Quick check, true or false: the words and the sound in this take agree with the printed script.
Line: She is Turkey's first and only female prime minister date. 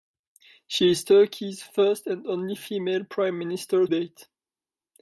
true